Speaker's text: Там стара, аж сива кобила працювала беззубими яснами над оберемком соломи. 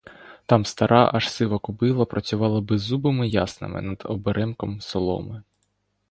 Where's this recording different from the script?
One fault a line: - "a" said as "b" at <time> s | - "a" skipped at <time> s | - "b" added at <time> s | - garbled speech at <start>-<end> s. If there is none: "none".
none